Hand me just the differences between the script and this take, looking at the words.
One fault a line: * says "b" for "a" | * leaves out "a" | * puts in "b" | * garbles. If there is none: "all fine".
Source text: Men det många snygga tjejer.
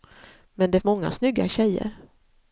all fine